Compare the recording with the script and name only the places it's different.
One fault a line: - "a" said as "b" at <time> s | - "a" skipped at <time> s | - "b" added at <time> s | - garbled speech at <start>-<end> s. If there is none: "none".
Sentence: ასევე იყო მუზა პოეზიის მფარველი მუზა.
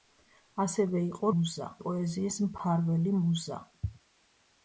none